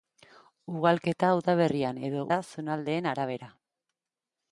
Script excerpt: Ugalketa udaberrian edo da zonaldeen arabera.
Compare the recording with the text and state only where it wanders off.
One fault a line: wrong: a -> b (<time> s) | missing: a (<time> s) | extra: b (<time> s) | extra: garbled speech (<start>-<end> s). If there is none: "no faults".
no faults